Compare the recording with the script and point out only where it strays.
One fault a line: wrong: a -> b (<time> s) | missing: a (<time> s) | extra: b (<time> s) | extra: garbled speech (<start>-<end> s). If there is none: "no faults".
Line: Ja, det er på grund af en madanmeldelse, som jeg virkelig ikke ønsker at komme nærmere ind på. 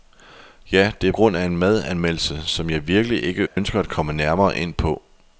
missing: på (1.1 s)